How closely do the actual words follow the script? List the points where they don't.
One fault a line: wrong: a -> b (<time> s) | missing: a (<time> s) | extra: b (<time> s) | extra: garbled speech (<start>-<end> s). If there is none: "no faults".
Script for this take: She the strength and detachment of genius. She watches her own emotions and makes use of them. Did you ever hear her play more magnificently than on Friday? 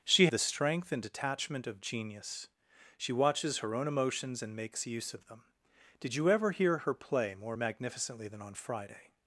no faults